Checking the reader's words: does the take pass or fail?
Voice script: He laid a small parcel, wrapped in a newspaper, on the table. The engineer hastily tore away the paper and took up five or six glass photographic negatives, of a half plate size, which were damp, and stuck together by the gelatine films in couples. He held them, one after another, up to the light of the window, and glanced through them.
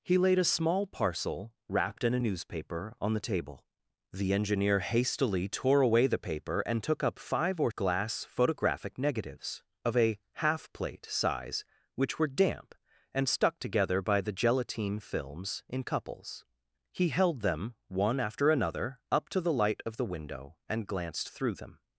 fail